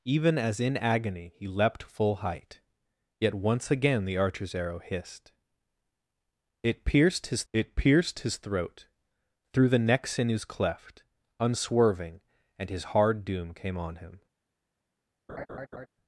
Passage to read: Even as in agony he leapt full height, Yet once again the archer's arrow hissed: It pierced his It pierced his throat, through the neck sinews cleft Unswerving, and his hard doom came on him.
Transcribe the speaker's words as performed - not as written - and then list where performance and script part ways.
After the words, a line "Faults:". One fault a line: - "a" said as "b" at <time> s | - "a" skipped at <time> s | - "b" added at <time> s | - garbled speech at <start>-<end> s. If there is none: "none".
Even as in agony he leapt full height, Yet once again the archer's arrow hissed: It pierced his It pierced his throat, through the neck sinews cleft Unswerving, and his hard doom came on him.
Faults:
none